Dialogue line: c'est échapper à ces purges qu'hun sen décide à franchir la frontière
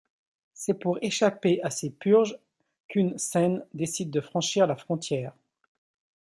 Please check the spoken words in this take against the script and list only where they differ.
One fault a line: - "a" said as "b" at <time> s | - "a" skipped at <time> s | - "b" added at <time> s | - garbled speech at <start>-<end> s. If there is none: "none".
- "pour" added at 0.7 s
- "à" said as "de" at 4.1 s